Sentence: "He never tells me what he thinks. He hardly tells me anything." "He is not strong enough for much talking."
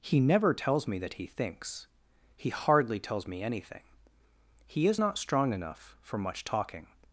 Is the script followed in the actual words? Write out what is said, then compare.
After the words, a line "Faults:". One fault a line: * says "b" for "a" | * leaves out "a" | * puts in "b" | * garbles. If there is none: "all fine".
"He never tells me that he thinks. He hardly tells me anything." "He is not strong enough for much talking."
Faults:
* says "that" for "what"